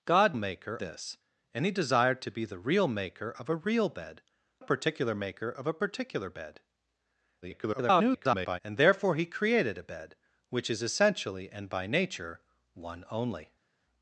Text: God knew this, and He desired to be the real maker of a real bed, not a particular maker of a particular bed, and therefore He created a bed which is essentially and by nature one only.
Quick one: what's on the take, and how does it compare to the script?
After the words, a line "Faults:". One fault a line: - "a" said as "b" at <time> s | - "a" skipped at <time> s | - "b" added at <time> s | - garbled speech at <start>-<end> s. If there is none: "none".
God maker this, and He desired to be the real maker of a real bed, a particular maker of a particular bed, [garbled] and therefore He created a bed which is essentially and by nature one only.
Faults:
- "knew" said as "maker" at 0.3 s
- "not" skipped at 4.2 s
- garbled speech at 7.4-8.6 s